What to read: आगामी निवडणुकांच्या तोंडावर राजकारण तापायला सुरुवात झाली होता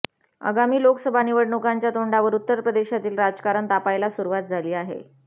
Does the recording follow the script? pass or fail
fail